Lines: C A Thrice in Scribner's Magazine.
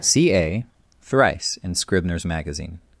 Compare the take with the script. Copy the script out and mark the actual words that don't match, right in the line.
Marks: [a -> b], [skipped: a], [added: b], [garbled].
C A Thrice in Scribner's Magazine.